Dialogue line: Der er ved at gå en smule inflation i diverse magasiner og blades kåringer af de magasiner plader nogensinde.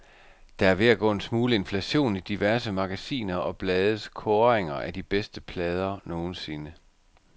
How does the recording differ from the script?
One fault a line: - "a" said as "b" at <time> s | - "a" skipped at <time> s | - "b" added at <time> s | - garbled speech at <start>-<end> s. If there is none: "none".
- "magasiner" said as "bedste" at 5.0 s